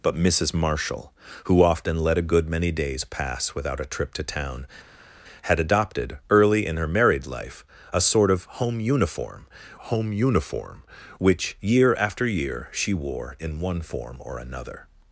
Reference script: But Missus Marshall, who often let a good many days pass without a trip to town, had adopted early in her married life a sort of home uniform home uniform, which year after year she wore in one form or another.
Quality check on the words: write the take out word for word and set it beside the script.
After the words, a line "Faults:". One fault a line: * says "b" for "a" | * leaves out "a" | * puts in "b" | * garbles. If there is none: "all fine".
But Missus Marshall, who often let a good many days pass without a trip to town, had adopted early in her married life a sort of home uniform home uniform, which year after year she wore in one form or another.
Faults:
all fine